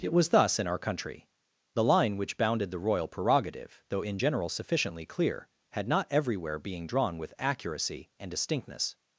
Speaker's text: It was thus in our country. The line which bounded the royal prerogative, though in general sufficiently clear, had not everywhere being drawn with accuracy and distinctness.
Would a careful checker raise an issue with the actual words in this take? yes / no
no